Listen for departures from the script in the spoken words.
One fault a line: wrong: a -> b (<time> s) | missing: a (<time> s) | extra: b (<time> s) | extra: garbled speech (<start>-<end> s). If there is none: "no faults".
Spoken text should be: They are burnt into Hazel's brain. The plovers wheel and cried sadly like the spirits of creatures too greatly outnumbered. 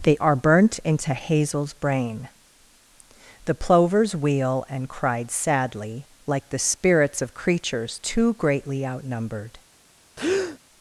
no faults